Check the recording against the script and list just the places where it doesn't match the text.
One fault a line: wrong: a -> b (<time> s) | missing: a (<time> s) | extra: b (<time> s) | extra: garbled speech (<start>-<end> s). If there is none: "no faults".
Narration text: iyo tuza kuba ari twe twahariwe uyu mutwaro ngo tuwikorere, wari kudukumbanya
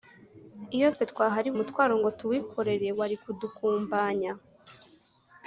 missing: tuza kuba ari (0.9 s)
missing: uyu (1.6 s)